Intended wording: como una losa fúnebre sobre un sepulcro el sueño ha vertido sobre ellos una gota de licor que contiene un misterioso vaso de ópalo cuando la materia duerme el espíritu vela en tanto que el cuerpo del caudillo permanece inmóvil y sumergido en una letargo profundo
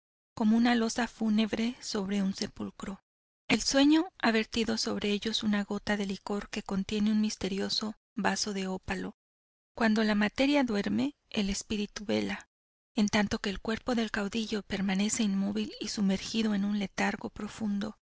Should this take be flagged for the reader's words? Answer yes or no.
yes